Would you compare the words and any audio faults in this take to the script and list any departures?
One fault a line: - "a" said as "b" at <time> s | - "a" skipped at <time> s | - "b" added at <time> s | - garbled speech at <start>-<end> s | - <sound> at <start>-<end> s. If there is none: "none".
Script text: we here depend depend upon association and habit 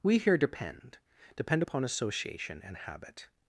none